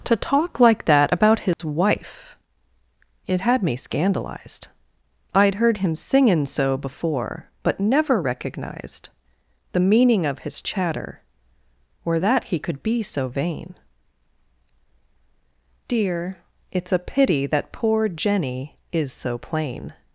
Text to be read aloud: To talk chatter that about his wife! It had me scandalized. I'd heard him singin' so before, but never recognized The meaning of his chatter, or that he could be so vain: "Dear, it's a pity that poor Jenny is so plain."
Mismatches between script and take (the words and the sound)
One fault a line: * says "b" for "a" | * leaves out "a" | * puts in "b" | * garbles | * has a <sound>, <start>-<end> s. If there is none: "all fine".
* says "like" for "chatter"
* has a dropout, 1.5-1.6 s